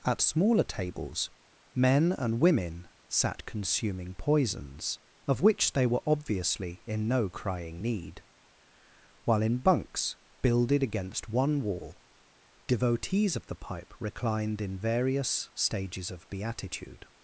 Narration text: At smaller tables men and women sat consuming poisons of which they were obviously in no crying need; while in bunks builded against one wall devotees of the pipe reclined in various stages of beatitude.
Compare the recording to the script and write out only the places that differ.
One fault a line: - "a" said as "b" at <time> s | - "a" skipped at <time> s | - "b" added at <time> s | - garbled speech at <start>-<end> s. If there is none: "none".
none